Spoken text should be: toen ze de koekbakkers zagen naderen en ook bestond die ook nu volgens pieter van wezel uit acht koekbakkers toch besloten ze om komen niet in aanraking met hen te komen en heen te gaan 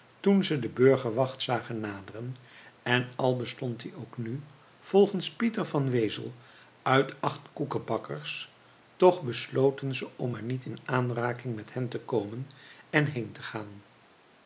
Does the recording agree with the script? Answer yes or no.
no